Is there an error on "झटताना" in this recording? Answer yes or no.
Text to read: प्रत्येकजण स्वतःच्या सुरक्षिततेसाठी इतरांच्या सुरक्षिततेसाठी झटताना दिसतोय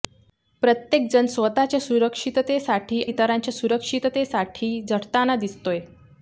no